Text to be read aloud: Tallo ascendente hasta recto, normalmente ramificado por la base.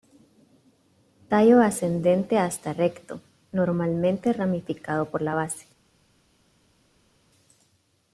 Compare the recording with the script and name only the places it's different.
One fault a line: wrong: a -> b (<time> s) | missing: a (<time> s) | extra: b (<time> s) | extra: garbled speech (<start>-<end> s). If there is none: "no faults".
no faults